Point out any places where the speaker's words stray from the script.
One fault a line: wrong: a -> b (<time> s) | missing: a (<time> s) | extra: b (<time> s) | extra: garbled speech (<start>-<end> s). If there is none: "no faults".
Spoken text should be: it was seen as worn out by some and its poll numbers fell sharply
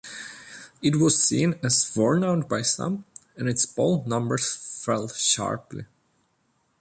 no faults